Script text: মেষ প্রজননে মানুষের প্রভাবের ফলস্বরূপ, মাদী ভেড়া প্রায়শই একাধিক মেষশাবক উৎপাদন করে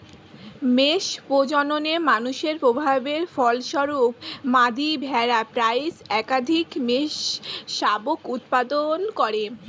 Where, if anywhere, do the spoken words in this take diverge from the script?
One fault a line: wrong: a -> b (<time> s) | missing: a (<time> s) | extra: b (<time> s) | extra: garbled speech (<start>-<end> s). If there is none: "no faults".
no faults